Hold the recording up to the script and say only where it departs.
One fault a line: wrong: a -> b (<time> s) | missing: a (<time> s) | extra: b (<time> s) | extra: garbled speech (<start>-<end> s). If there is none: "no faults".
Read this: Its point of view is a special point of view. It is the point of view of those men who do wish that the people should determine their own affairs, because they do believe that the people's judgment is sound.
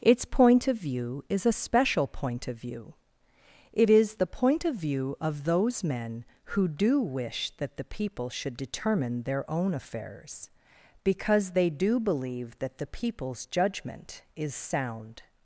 no faults